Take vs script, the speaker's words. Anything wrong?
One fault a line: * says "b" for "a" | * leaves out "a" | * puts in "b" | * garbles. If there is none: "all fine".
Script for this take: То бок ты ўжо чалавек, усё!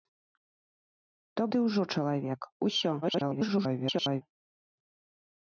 * leaves out "бок"
* garbles